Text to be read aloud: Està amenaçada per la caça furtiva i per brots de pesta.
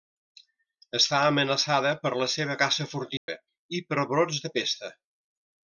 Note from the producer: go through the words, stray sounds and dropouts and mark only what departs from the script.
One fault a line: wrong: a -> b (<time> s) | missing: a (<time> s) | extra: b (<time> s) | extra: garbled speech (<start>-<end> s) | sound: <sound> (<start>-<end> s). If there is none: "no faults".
extra: seva (2.4 s)
sound: dropout (3.2-3.3 s)